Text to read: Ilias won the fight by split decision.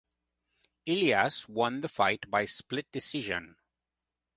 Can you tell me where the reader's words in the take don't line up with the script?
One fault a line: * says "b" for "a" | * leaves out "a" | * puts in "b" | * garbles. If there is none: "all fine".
all fine